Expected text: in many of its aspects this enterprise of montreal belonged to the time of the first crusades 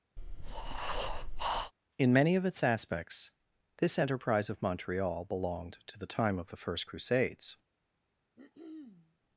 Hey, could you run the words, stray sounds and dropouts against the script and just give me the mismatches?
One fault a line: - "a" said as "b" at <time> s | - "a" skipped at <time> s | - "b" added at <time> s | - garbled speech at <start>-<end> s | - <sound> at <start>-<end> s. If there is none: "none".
- breath at 0.2-1.7 s
- throat clearing at 8.4-9.2 s